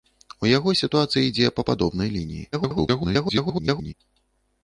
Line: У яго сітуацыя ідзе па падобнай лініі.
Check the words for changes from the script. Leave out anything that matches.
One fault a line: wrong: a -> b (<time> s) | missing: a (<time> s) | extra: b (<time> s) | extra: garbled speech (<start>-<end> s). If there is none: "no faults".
extra: garbled speech (2.5-3.9 s)